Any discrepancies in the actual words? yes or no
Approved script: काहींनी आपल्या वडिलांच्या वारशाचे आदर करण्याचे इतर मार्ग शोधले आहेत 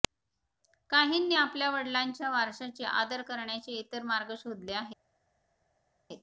no